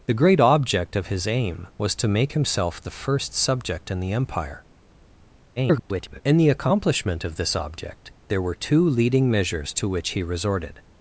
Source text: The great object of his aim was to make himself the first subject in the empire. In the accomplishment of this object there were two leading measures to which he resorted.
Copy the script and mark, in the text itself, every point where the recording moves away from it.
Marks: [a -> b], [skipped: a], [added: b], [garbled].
The great object of his aim was to make himself the first subject in the empire. [garbled] In the accomplishment of this object there were two leading measures to which he resorted.